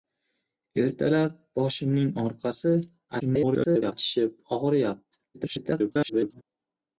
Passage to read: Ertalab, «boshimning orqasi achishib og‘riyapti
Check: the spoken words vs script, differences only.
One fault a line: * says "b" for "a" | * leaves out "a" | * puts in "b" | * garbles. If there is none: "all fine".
* garbles
* garbles